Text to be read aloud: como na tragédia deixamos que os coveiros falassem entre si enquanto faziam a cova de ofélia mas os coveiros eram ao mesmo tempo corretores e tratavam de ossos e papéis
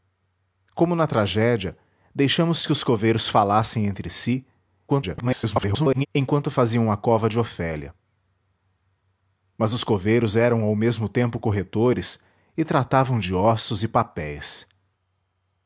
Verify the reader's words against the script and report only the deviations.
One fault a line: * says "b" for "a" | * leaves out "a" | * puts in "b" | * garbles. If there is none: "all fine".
* garbles